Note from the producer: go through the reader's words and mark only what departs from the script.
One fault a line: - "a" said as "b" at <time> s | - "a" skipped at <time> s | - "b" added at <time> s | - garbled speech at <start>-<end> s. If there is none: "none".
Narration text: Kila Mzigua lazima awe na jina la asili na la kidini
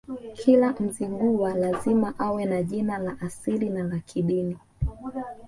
none